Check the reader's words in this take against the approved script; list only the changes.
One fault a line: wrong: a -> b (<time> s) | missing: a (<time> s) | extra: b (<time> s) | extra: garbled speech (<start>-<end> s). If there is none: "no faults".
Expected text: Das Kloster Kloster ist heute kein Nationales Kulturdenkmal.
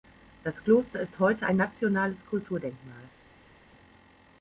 missing: Kloster (1.0 s)
wrong: kein -> ein (1.4 s)